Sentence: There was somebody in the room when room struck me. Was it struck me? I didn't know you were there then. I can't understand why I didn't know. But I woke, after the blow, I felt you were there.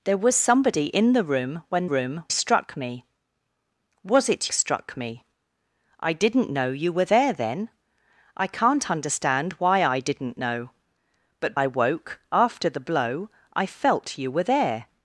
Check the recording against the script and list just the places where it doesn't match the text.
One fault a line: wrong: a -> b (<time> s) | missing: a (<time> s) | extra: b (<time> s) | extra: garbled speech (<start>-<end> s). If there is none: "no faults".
no faults